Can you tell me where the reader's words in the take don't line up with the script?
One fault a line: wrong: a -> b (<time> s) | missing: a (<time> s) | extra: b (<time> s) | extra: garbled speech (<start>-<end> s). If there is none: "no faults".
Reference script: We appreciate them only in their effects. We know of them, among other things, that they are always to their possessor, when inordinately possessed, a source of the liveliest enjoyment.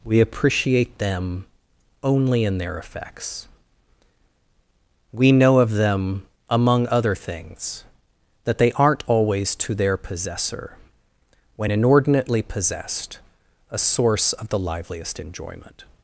wrong: are -> aren't (8.7 s)